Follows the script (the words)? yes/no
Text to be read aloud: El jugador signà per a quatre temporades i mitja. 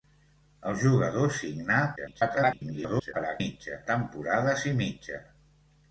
no